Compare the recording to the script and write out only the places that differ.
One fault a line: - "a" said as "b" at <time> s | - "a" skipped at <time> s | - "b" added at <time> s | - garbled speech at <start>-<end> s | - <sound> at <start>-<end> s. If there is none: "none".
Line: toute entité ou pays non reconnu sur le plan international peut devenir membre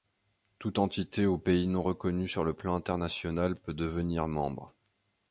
none